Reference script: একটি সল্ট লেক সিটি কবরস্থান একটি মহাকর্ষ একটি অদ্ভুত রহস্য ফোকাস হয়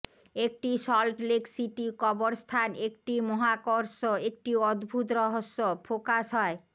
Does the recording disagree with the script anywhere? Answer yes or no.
no